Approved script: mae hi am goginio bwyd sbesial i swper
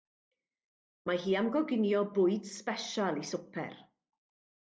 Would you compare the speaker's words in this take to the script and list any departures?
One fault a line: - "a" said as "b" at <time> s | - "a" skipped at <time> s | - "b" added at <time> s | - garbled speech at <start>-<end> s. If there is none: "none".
none